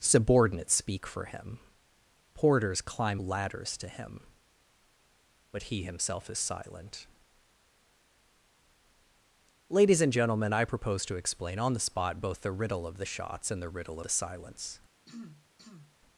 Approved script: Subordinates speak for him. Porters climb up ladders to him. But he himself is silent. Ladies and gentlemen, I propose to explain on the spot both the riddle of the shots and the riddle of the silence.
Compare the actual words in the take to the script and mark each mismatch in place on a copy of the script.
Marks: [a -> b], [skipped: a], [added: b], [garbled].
Subordinates speak for him. Porters climb [skipped: up] ladders to him. But he himself is silent. Ladies and gentlemen, I propose to explain on the spot both the riddle of the shots and the riddle [skipped: of] the silence.